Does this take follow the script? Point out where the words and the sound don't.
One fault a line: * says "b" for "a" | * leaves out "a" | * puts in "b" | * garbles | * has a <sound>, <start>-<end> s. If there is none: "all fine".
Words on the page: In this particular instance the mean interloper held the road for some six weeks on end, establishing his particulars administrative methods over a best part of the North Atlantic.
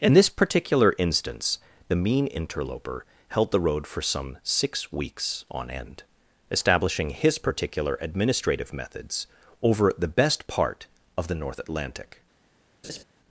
* says "particular" for "particulars"
* says "the" for "a"
* has a laugh, 12.8-13.0 s